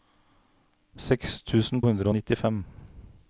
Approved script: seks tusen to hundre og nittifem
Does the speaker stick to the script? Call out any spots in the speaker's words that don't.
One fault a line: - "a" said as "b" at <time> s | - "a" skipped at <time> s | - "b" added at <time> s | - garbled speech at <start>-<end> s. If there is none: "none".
- "to" skipped at 1.8 s